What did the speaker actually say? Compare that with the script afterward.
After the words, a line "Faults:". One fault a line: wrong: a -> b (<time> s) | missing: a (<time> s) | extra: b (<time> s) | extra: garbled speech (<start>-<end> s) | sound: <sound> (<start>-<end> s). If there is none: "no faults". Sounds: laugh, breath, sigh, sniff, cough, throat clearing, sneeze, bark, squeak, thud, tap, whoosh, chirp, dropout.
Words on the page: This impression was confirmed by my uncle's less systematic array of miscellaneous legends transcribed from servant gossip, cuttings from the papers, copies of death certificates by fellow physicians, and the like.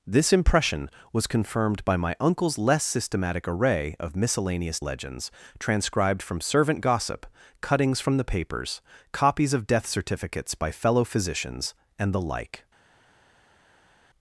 This impression was confirmed by my uncle's less systematic array of miscellaneous legends transcribed from servant gossip, cuttings from the papers, copies of death certificates by fellow physicians, and the like.
Faults:
no faults